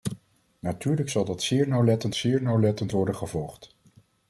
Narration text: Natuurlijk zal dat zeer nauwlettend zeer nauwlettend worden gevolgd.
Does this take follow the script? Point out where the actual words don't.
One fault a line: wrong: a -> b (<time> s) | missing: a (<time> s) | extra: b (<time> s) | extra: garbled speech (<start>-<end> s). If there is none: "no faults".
no faults